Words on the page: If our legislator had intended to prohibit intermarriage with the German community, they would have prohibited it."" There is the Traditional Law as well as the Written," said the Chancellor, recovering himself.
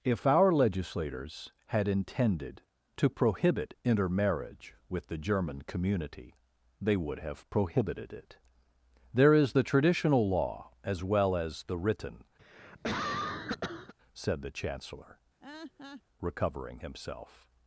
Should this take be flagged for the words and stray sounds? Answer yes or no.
yes